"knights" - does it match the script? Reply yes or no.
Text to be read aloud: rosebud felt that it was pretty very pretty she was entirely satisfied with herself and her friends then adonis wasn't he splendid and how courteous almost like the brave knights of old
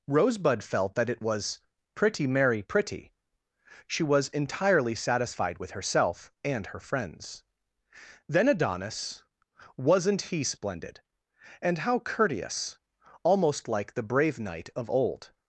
no